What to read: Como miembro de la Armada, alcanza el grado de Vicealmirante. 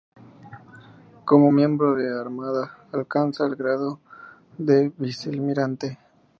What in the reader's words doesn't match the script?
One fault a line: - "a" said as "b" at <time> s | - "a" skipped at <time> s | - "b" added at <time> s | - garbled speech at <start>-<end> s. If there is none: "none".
none